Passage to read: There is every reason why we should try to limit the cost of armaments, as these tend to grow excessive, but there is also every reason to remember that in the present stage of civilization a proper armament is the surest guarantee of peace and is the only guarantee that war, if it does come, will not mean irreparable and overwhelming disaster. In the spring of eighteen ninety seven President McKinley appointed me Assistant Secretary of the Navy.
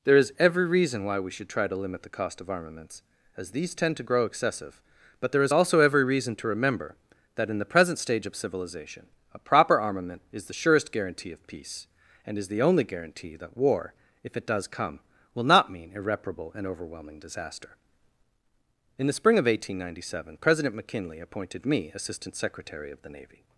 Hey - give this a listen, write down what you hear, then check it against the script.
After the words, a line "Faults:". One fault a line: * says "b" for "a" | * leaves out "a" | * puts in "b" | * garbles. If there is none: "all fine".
There is every reason why we should try to limit the cost of armaments, as these tend to grow excessive, but there is also every reason to remember that in the present stage of civilization a proper armament is the surest guarantee of peace and is the only guarantee that war, if it does come, will not mean irreparable and overwhelming disaster. In the spring of eighteen ninety seven President McKinley appointed me Assistant Secretary of the Navy.
Faults:
all fine